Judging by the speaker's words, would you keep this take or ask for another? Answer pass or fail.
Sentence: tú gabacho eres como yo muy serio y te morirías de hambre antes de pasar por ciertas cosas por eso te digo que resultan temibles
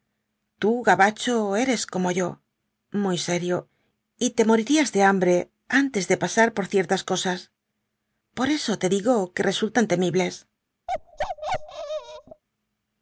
pass